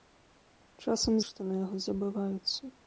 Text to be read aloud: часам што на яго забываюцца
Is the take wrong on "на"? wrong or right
right